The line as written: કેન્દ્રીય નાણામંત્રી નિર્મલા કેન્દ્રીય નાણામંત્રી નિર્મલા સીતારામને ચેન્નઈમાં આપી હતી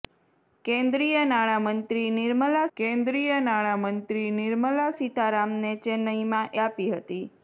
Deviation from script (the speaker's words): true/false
false